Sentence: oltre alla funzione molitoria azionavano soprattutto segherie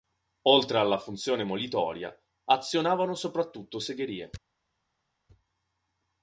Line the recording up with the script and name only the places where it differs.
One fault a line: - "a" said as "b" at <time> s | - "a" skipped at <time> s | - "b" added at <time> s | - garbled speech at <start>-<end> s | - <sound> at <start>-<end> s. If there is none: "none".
none